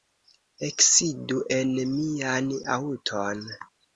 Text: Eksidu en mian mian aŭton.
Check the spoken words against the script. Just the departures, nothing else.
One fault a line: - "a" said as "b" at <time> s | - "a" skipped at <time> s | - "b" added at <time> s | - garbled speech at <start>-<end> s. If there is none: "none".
- "mian" skipped at 2.5 s